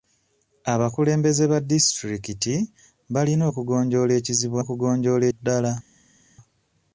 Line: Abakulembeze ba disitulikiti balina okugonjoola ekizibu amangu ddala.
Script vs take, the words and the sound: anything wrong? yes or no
yes